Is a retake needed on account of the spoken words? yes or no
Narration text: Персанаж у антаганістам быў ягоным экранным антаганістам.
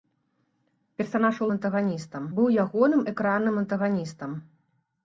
no